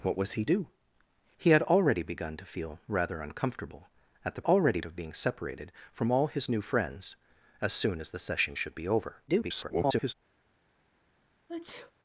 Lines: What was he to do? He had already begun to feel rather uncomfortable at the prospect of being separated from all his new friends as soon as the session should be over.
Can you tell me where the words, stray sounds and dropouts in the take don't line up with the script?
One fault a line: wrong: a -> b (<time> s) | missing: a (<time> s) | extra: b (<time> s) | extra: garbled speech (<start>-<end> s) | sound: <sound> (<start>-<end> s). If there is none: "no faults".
missing: to (0.5 s)
wrong: prospect -> already (4.4 s)
extra: garbled speech (9.3-10.1 s)
sound: sneeze (11.5-11.9 s)